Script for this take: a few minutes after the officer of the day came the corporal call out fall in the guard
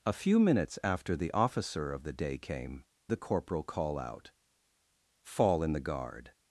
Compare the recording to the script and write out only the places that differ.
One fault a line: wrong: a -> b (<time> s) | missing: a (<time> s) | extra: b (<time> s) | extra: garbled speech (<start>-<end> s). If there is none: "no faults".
no faults